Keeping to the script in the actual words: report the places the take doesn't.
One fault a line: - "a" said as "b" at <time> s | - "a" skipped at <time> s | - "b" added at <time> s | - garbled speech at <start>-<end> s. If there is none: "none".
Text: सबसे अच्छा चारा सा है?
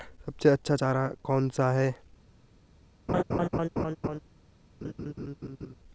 - "कौन" added at 1.2 s